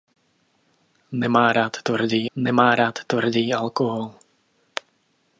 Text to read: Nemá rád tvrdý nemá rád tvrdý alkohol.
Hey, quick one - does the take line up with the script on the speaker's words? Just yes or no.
yes